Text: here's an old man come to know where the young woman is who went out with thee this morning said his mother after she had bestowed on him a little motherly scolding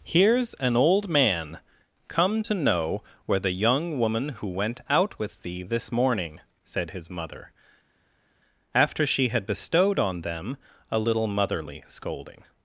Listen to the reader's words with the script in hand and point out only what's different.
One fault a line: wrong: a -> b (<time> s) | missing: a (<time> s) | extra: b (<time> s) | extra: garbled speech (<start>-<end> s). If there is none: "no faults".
missing: is (4.3 s)
wrong: him -> them (10.2 s)